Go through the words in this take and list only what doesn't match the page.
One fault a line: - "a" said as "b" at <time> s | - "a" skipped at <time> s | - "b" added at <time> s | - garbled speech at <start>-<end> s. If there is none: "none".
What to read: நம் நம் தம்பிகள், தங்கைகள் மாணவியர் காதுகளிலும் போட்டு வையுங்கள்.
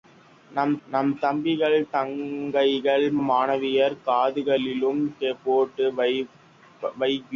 none